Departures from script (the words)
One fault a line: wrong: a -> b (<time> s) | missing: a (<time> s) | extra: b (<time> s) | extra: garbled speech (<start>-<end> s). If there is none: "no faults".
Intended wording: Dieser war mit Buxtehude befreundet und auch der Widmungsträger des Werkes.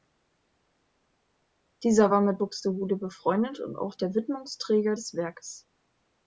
no faults